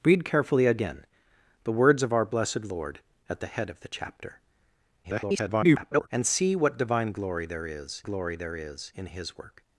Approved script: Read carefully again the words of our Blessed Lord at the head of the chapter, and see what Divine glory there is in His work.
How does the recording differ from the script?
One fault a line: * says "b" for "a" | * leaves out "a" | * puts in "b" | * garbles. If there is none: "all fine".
* garbles
* puts in "glory there is"